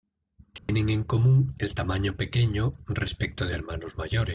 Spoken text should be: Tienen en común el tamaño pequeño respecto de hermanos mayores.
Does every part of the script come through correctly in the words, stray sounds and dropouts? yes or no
no